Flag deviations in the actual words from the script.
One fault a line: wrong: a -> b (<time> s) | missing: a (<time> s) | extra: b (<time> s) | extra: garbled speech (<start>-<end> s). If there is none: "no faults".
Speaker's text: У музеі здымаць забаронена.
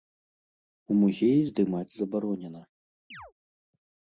no faults